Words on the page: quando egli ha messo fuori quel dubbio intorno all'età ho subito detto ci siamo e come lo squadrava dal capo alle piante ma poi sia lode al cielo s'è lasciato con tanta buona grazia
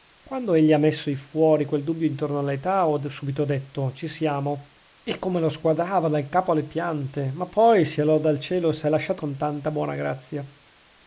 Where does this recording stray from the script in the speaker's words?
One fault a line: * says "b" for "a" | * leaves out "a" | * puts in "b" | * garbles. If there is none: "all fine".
all fine